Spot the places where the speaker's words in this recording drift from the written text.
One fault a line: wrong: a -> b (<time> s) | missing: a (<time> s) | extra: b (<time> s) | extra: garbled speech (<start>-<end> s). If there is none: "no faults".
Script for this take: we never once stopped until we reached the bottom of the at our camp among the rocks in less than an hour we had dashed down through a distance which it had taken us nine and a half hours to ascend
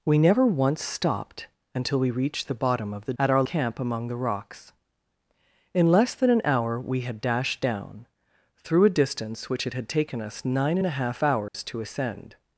no faults